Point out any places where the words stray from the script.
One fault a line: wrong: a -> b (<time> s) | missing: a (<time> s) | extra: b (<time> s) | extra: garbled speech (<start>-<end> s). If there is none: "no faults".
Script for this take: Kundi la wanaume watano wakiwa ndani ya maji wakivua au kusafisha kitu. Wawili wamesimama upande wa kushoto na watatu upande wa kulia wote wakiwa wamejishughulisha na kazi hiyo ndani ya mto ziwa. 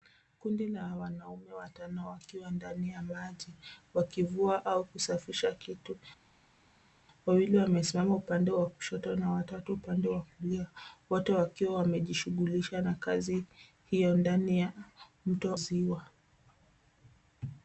no faults